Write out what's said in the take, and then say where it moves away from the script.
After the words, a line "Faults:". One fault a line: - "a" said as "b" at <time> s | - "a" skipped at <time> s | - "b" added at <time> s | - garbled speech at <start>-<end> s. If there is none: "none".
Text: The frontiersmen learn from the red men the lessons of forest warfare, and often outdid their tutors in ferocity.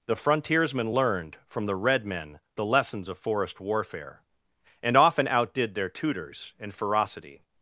The frontiersmen learned from the red men the lessons of forest warfare, and often outdid their tutors in ferocity.
Faults:
- "learn" said as "learned" at 0.9 s